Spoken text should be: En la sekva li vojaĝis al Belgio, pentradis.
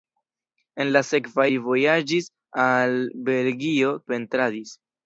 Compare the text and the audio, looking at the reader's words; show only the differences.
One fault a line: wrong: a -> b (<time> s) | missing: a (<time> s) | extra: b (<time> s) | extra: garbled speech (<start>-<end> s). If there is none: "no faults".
no faults